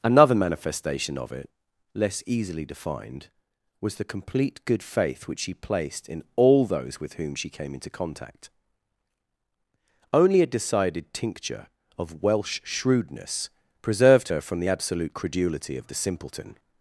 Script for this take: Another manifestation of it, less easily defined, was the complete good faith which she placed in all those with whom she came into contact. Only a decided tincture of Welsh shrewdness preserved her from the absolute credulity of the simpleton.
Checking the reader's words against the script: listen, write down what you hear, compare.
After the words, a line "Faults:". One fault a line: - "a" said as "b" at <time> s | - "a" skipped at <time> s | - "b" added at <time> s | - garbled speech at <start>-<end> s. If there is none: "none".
Another manifestation of it, less easily defined, was the complete good faith which she placed in all those with whom she came into contact. Only a decided tincture of Welsh shrewdness preserved her from the absolute credulity of the simpleton.
Faults:
none